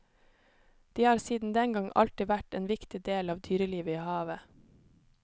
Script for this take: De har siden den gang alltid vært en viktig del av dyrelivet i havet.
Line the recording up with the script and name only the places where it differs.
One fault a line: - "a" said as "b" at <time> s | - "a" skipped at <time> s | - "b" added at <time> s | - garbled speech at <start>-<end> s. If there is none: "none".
none